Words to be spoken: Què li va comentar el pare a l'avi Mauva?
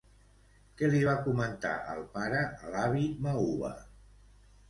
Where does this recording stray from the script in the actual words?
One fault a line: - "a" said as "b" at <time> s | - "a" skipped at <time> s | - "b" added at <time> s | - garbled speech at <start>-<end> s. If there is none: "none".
none